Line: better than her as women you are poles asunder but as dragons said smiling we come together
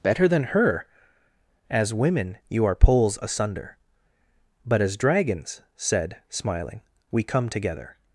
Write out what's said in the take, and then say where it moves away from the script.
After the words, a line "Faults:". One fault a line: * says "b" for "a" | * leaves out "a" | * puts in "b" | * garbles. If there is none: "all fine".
better than her as women you are poles asunder but as dragons said smiling we come together
Faults:
all fine